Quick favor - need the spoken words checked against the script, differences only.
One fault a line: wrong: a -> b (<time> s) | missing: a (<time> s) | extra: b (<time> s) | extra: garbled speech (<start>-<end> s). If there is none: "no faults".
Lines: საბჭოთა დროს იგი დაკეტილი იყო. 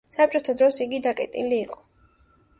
no faults